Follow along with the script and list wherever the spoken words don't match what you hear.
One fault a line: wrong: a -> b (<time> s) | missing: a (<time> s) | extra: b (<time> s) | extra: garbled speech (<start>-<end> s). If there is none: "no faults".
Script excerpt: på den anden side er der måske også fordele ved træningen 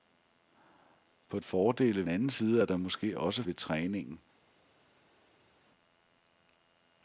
wrong: den -> fordele (1.4 s)
missing: fordele (3.4 s)